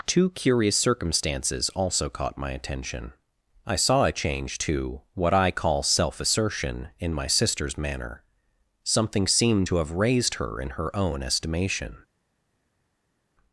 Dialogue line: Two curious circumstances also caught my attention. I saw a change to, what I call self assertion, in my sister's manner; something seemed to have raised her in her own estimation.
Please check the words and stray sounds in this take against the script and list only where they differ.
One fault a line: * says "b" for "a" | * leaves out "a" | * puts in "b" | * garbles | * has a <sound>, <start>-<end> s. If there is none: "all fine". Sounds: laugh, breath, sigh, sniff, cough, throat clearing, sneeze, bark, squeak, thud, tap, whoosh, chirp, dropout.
all fine